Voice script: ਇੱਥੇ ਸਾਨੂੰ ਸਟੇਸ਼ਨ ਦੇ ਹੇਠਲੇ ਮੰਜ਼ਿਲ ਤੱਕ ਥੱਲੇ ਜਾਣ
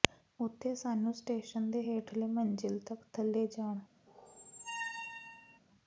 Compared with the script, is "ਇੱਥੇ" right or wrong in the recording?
wrong